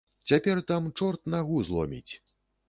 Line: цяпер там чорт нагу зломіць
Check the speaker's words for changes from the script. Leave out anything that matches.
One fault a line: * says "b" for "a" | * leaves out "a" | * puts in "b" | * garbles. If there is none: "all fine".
all fine